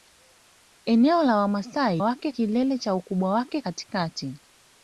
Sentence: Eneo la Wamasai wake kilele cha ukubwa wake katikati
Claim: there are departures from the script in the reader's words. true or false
false